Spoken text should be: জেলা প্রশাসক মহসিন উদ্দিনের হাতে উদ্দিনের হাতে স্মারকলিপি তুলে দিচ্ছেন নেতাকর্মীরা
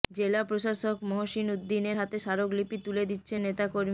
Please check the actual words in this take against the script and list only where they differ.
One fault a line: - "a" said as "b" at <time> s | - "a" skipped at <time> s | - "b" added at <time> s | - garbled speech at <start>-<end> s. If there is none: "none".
- "উদ্দিনের হাতে" skipped at 2.2 s